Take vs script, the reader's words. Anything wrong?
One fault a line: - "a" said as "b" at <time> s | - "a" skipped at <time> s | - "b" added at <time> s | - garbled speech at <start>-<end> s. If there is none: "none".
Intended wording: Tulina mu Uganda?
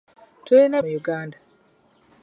none